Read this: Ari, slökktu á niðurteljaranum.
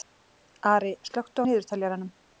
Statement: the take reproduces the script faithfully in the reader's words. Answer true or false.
true